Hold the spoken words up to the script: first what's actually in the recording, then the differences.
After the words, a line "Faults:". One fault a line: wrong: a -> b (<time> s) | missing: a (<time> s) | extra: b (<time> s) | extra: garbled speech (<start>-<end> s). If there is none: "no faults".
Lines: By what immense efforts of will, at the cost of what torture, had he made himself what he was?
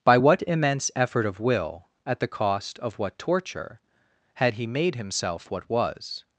By what immense effort of will, at the cost of what torture, had he made himself what was?
Faults:
wrong: efforts -> effort (1.0 s)
missing: he (5.7 s)